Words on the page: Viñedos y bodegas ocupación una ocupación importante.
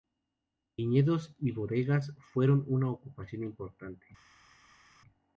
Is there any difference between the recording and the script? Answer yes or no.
yes